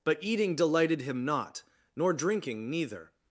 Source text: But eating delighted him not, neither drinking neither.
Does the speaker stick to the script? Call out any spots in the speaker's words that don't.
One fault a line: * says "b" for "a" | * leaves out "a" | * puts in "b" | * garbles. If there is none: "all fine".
* says "nor" for "neither"